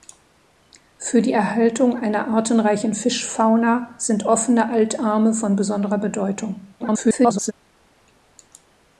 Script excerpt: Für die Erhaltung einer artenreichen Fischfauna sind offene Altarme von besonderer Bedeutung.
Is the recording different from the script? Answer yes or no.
yes